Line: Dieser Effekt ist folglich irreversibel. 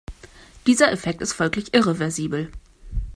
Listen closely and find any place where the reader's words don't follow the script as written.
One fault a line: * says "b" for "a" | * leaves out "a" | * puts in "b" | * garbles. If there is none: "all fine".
all fine